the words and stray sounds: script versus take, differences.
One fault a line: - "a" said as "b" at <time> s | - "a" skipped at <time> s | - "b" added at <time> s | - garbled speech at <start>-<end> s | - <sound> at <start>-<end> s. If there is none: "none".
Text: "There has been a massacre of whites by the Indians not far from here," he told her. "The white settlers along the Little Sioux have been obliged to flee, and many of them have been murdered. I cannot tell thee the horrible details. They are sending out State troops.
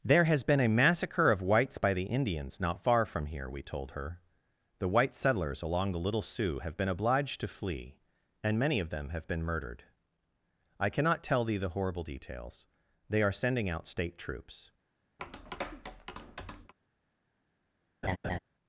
- "he" said as "we" at 3.5 s
- tap at 15.2-16.7 s
- laugh at 18.0-18.4 s